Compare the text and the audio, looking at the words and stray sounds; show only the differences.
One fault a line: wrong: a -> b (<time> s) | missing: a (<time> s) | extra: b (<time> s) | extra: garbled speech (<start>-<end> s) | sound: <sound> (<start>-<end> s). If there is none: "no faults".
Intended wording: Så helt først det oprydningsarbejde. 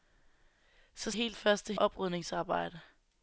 no faults